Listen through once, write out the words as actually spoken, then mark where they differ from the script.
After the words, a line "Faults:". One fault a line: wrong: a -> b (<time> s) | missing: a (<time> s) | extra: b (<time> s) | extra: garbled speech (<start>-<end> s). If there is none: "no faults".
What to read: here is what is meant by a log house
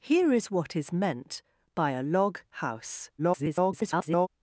here is what is meant by a log house [garbled]
Faults:
extra: garbled speech (3.2-4.3 s)